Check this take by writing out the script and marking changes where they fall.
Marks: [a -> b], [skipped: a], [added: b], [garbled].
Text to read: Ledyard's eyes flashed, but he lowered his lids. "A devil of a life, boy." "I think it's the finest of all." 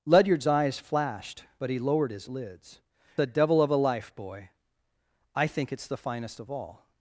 Ledyard's eyes flashed, but he lowered his lids. "A devil of a life, boy." "I think it's the finest of all."